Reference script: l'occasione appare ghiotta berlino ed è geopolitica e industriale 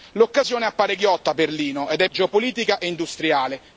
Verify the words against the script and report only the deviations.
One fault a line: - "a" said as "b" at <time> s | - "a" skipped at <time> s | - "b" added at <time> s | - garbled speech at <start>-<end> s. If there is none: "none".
none